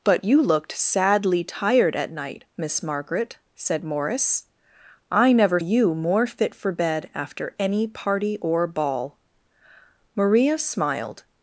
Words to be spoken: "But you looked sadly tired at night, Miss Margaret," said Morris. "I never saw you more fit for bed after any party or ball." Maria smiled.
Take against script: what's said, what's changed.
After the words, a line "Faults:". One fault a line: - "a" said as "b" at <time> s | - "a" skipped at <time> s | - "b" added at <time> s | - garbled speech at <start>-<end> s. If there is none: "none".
"But you looked sadly tired at night, Miss Margaret," said Morris. "I never you more fit for bed after any party or ball." Maria smiled.
Faults:
- "saw" skipped at 5.6 s